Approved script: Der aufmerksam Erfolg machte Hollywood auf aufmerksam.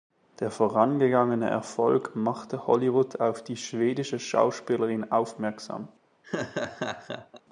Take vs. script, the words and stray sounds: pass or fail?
fail